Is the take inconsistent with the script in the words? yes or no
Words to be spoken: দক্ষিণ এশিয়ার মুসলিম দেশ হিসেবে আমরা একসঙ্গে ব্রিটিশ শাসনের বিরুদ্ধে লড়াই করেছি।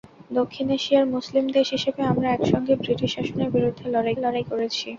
yes